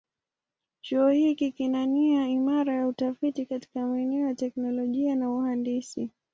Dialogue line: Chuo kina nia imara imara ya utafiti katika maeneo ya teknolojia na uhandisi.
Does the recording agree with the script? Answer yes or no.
no